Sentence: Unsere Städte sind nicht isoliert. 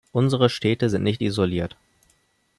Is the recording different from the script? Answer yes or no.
no